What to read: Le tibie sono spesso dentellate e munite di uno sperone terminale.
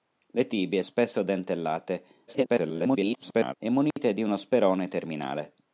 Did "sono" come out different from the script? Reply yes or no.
yes